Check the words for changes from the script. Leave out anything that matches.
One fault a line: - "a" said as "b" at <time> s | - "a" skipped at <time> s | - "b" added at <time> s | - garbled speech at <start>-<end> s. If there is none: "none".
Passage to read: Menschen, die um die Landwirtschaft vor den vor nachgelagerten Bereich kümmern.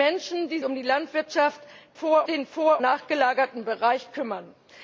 none